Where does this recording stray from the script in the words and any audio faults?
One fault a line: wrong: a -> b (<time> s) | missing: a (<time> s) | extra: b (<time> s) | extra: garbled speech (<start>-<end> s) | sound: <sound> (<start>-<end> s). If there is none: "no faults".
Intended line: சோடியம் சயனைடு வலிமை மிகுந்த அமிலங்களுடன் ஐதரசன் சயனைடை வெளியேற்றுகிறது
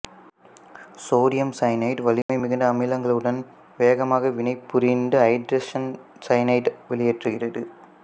sound: dropout (2.2-2.3 s)
extra: வேகமாக வினைபுரிந்து (3.8 s)